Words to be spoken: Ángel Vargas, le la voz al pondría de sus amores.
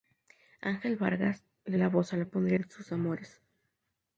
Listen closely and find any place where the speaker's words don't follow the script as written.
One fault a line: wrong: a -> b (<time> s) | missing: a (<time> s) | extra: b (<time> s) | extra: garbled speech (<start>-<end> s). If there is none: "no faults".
no faults